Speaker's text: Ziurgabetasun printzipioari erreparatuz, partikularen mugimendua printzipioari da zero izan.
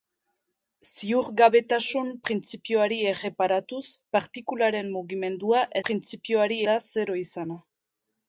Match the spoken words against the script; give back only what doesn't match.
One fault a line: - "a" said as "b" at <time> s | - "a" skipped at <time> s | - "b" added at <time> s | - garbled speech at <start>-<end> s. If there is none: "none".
none